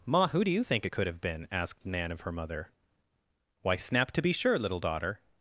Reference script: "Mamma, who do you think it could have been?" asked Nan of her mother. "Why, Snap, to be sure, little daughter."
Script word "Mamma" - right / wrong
wrong